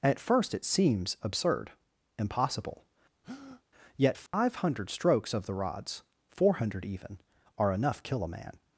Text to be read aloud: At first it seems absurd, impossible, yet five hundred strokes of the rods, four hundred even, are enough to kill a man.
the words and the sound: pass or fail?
fail